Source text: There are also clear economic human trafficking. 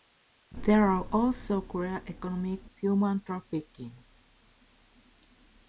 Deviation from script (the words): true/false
false